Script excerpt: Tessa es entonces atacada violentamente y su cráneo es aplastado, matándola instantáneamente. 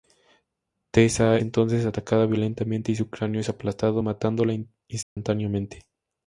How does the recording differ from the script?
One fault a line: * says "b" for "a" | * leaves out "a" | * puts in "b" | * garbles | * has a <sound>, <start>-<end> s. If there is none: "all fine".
* leaves out "es"
* has a dropout, 5.0-5.2 s